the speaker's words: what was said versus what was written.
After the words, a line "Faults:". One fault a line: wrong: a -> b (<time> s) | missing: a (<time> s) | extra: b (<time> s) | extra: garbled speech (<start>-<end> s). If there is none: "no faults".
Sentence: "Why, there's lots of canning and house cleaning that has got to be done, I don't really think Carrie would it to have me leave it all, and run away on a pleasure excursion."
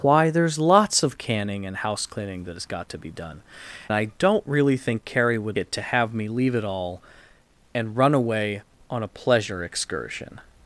"Why, there's lots of canning and house cleaning that has got to be done, I don't really think Carrie would it to have me leave it all, and run away on a pleasure excursion."
Faults:
no faults